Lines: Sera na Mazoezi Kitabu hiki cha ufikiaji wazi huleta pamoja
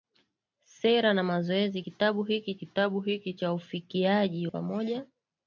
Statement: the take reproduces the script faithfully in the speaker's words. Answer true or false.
false